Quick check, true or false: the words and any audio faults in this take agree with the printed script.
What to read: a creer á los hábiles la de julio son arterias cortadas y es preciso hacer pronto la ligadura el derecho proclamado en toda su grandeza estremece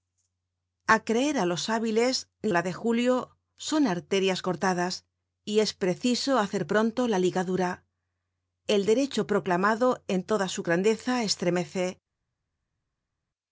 true